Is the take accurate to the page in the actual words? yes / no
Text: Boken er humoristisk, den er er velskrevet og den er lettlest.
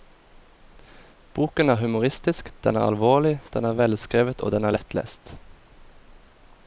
no